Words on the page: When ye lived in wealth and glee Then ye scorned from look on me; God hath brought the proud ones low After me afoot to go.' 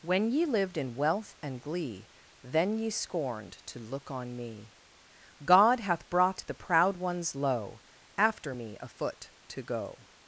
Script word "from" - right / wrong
wrong